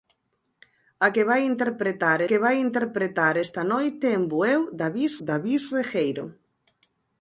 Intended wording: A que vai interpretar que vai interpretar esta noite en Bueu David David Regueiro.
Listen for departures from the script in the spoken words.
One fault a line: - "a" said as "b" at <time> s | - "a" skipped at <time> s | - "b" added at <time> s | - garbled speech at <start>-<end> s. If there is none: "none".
none